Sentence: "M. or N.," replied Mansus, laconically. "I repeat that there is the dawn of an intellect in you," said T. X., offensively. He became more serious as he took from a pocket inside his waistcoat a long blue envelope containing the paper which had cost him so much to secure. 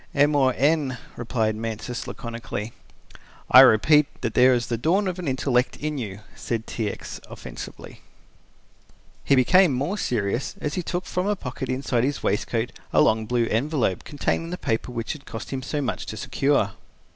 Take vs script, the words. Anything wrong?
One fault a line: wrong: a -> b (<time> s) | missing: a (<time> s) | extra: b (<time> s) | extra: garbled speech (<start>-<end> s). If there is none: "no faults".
no faults